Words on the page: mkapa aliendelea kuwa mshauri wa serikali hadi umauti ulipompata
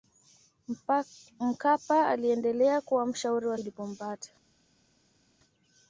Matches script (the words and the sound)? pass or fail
fail